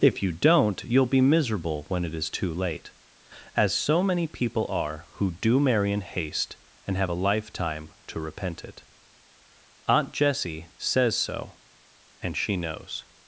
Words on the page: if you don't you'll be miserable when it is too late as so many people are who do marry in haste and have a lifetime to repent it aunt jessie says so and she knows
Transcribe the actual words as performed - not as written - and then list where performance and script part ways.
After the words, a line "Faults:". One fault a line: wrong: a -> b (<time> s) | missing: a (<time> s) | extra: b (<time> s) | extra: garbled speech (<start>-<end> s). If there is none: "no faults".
if you don't you'll be miserable when it is too late as so many people are who do marry in haste and have a lifetime to repent it aunt jessie says so and she knows
Faults:
no faults